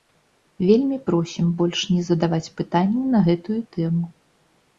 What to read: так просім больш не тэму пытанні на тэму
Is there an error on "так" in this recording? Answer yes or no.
yes